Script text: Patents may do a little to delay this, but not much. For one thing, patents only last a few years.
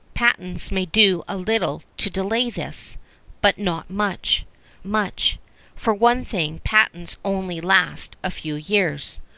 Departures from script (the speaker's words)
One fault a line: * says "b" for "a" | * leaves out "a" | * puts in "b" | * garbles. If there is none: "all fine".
* puts in "much"